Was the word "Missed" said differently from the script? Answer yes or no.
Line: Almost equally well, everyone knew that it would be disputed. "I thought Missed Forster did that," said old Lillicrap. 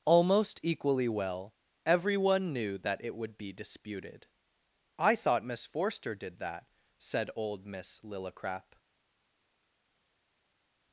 yes